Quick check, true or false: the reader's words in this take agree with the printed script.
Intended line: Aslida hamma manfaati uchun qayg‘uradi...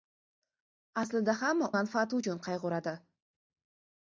true